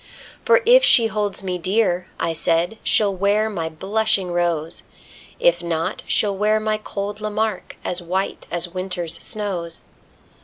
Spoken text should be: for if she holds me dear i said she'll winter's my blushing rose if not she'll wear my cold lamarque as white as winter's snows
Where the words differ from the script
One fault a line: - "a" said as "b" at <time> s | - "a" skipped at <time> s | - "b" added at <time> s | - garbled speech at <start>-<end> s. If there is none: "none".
- "winter's" said as "wear" at 3.1 s